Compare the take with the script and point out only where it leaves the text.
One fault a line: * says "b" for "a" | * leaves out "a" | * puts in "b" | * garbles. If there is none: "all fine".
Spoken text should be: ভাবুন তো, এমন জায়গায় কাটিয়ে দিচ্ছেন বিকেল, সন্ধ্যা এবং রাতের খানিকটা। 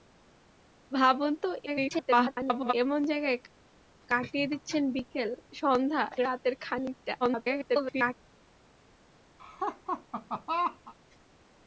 * garbles
* leaves out "এবং"
* garbles